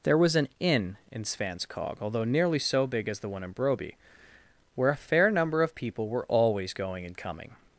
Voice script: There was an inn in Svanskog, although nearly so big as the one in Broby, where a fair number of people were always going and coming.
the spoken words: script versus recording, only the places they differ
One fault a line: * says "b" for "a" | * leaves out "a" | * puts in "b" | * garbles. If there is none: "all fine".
all fine